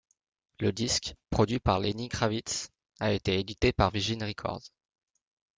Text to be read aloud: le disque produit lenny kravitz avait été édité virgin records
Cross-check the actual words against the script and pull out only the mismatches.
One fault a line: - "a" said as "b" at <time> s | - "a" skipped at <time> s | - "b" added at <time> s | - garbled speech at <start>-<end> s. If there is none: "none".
- "par" added at 1.6 s
- "avait" said as "a" at 3.0 s
- "par" added at 3.7 s